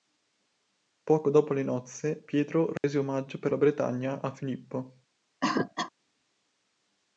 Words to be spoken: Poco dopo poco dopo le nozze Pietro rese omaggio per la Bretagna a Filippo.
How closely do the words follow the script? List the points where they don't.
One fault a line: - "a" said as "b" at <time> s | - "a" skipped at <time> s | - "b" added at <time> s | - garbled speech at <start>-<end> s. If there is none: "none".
- "poco dopo" skipped at 1.5 s